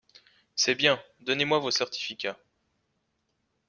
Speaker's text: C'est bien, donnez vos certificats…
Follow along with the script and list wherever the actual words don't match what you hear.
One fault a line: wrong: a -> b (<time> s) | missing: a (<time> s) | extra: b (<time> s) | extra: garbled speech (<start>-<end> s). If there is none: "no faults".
extra: moi (1.5 s)